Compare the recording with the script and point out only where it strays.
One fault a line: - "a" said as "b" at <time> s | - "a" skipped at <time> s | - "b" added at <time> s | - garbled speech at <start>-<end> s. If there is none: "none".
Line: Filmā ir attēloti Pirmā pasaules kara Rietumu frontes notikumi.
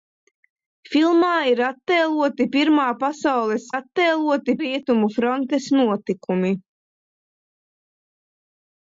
- "kara" said as "attēloti" at 3.7 s